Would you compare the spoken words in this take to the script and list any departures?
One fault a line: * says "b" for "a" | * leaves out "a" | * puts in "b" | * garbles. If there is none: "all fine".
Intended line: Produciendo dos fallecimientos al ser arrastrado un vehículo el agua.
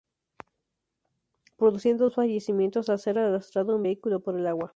* puts in "por"